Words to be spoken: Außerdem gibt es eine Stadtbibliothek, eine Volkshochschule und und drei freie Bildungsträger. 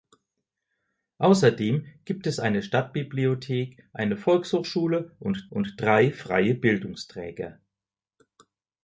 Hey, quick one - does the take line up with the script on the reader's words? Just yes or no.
yes